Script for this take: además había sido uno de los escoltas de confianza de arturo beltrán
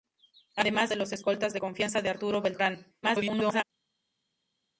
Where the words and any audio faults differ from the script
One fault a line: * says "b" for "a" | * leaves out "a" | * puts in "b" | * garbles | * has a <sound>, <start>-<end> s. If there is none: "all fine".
* leaves out "había sido uno"
* garbles